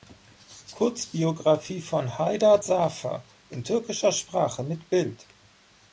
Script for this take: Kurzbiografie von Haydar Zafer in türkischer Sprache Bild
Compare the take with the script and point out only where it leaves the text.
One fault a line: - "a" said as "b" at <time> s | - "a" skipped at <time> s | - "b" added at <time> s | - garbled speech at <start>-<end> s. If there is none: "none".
- "mit" added at 4.6 s